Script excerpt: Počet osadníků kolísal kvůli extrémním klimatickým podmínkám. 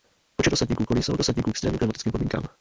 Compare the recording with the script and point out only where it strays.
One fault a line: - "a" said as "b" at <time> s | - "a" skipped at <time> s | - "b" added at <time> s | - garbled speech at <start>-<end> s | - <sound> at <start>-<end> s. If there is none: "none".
- "kvůli" said as "osadníků" at 1.2 s